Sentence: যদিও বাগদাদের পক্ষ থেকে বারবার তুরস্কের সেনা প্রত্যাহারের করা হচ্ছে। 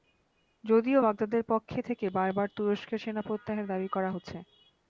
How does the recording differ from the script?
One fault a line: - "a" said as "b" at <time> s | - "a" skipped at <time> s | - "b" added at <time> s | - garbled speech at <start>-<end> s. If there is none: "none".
- "দাবি" added at 3.7 s